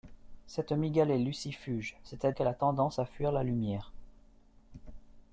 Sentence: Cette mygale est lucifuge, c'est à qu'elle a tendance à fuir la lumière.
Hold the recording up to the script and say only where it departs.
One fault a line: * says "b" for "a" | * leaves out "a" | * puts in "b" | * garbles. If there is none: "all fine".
all fine